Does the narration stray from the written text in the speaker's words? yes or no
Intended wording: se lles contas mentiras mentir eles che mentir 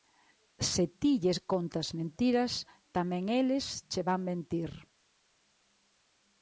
yes